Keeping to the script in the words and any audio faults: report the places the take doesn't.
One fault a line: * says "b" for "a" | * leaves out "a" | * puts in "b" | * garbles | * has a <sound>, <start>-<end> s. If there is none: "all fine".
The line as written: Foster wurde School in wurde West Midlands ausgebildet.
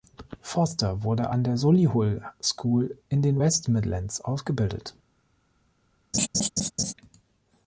* puts in "an der Solihull"
* says "den" for "wurde"
* has a laugh, 6.1-6.9 s